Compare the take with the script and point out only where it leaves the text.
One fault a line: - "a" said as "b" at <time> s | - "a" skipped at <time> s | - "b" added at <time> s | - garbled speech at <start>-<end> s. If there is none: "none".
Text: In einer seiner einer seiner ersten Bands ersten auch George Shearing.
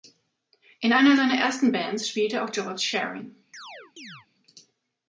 - "einer seiner" skipped at 1.3 s
- "ersten" said as "spielte" at 2.1 s